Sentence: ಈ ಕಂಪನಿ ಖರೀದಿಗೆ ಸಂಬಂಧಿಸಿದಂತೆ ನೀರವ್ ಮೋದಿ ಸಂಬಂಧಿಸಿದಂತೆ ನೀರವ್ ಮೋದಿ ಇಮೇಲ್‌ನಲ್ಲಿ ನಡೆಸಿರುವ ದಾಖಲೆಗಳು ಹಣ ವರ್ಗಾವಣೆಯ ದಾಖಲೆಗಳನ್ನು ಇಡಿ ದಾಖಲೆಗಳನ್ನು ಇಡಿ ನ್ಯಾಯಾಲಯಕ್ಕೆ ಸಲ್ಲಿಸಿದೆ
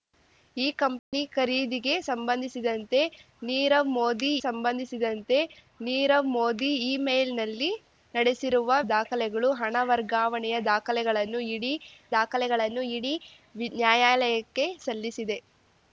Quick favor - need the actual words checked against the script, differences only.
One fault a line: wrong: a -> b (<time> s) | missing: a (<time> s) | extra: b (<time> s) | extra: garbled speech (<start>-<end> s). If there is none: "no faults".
no faults